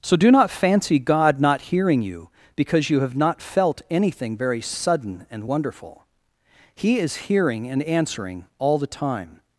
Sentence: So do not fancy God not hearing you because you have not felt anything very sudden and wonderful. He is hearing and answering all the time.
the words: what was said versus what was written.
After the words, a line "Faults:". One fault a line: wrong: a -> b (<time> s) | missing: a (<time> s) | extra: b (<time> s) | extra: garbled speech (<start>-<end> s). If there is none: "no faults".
So do not fancy God not hearing you because you have not felt anything very sudden and wonderful. He is hearing and answering all the time.
Faults:
no faults